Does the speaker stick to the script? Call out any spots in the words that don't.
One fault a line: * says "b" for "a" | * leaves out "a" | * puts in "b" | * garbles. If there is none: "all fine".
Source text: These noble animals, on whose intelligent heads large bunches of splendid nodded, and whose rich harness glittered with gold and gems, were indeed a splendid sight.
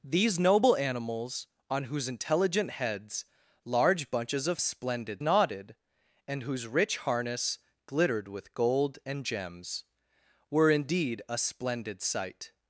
all fine